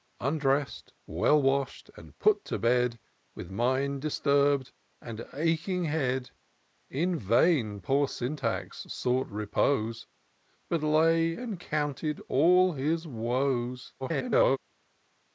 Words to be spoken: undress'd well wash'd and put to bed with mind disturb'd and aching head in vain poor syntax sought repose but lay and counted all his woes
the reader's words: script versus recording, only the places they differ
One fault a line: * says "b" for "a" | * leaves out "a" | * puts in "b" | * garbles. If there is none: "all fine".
* garbles